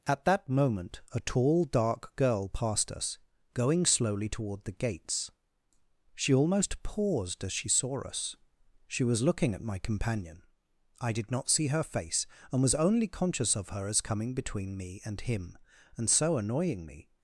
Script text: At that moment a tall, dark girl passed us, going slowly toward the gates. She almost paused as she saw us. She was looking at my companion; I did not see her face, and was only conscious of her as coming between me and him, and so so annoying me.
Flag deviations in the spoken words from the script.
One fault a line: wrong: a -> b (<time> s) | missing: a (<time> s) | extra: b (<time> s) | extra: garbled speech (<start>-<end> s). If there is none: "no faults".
missing: so (16.4 s)